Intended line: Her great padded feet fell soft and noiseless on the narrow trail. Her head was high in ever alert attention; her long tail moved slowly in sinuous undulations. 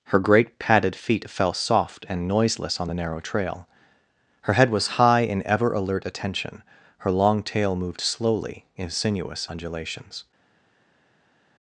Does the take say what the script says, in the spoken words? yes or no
yes